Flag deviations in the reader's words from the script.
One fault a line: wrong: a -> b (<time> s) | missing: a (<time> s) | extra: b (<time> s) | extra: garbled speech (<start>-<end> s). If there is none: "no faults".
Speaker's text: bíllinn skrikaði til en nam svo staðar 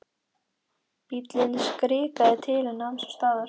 no faults